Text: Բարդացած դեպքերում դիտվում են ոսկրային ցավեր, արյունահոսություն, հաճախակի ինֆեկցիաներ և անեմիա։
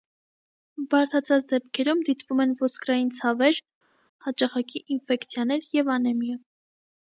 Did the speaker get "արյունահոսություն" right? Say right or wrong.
wrong